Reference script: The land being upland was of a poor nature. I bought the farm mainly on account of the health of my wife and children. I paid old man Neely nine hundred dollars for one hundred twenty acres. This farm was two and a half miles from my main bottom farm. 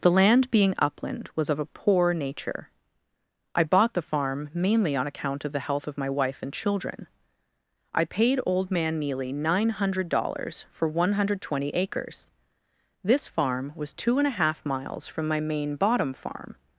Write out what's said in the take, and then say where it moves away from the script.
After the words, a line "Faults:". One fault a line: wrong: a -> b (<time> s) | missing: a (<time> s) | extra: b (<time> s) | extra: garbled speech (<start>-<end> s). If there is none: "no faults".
The land being upland was of a poor nature. I bought the farm mainly on account of the health of my wife and children. I paid old man Neely nine hundred dollars for one hundred twenty acres. This farm was two and a half miles from my main bottom farm.
Faults:
no faults